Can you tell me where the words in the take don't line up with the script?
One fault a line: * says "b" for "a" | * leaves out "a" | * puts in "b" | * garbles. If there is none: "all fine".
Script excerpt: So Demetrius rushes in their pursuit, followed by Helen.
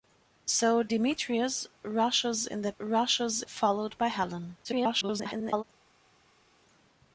* says "rushes" for "pursuit"
* garbles